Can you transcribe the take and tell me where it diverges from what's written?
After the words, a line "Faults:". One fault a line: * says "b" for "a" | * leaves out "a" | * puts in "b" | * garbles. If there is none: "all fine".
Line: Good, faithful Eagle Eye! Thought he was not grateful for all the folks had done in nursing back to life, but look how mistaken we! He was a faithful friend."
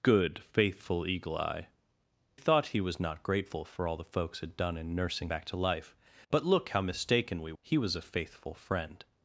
Good, faithful Eagle Eye! Thought he was not grateful for all the folks had done in nursing back to life, but look how mistaken we! He was a faithful friend."
Faults:
all fine